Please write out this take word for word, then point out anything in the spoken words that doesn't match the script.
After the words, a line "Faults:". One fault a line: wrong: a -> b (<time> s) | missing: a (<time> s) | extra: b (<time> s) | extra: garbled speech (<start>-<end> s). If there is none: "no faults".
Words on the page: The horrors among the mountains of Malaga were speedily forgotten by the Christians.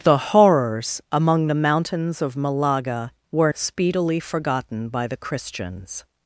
The horrors among the mountains of Malaga were speedily forgotten by the Christians.
Faults:
no faults